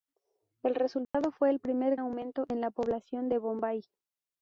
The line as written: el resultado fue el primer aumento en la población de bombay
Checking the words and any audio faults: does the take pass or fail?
fail